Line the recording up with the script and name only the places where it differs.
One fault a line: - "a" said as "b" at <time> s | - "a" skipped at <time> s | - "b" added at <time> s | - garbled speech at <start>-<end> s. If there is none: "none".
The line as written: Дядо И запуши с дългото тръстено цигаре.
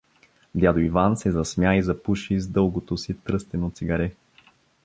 - "Иван се засмя" added at 0.8 s
- "си" added at 3.0 s